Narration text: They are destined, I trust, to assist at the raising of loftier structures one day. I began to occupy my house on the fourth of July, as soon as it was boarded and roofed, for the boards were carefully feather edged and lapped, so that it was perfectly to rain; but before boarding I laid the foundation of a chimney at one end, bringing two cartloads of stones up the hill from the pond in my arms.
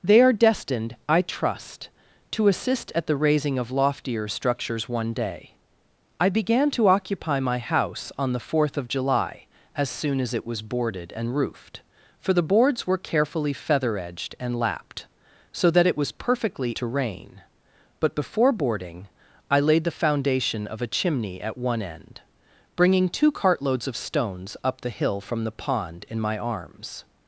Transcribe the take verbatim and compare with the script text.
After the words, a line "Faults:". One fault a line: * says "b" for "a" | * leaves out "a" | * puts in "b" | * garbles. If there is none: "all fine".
They are destined, I trust, to assist at the raising of loftier structures one day. I began to occupy my house on the fourth of July, as soon as it was boarded and roofed, for the boards were carefully feather edged and lapped, so that it was perfectly to rain; but before boarding I laid the foundation of a chimney at one end, bringing two cartloads of stones up the hill from the pond in my arms.
Faults:
all fine